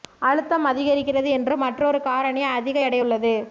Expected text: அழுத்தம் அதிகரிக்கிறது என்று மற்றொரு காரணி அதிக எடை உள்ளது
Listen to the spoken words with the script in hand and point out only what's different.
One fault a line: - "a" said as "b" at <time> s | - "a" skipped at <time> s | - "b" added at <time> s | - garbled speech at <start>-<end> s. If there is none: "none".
none